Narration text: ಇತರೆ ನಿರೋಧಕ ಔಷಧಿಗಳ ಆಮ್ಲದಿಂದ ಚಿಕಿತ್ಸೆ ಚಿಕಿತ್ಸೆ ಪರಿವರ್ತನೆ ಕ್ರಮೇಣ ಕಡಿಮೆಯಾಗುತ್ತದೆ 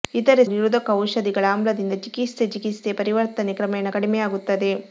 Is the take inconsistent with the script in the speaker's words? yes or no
no